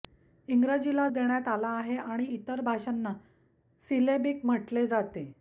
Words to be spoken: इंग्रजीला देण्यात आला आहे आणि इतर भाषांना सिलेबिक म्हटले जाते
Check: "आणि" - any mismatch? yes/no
no